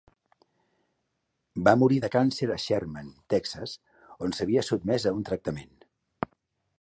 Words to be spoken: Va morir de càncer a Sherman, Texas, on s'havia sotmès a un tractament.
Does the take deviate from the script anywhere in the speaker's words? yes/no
no